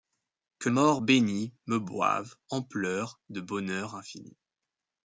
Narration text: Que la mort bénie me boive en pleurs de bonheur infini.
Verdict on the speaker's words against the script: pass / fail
fail